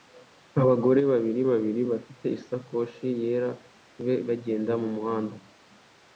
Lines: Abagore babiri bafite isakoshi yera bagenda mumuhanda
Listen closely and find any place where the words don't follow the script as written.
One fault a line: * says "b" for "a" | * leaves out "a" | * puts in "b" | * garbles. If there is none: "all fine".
* puts in "babiri"